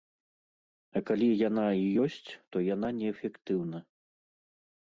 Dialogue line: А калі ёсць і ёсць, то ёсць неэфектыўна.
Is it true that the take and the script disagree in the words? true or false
true